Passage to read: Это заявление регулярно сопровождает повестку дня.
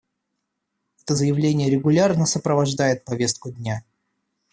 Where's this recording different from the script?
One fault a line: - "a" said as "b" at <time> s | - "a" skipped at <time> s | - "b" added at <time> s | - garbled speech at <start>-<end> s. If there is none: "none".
none